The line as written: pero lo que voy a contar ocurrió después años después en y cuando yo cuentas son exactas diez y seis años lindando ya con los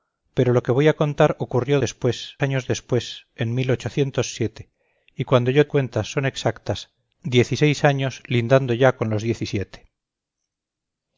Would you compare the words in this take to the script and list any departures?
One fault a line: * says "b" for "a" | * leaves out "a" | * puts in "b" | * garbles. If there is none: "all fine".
all fine